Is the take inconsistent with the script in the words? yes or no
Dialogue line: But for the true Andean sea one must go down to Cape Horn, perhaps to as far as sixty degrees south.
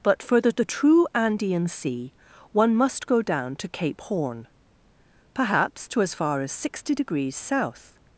yes